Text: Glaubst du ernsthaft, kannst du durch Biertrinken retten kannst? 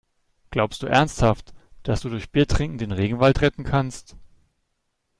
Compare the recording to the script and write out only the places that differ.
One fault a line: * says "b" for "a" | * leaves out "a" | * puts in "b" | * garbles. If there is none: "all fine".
* says "dass" for "kannst"
* puts in "den Regenwald"